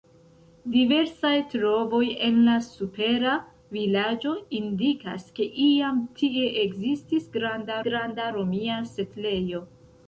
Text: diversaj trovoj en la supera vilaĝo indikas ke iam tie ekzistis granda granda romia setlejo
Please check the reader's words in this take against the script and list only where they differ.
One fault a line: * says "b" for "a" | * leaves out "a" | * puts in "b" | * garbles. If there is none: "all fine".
all fine